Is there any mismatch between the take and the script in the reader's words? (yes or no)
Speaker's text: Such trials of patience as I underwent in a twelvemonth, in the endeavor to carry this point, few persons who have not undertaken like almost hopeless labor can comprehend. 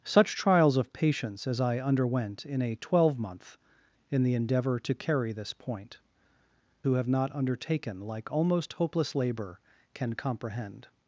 yes